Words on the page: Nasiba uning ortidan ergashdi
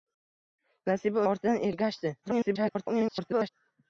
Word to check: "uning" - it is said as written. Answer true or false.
false